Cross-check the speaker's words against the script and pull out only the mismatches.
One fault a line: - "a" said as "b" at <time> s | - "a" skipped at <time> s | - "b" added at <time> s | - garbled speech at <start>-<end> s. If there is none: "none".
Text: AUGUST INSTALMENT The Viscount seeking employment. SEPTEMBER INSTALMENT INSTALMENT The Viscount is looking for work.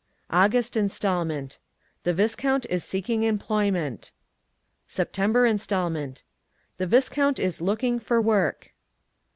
- "is" added at 2.7 s
- "INSTALMENT" skipped at 6.2 s